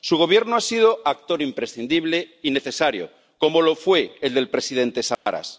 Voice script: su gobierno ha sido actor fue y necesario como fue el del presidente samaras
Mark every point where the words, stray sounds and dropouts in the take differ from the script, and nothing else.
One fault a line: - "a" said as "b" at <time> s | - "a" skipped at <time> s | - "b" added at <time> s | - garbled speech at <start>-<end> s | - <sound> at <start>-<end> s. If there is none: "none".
- "fue" said as "imprescindible" at 1.4 s
- "lo" added at 3.6 s
- dropout at 5.1-5.3 s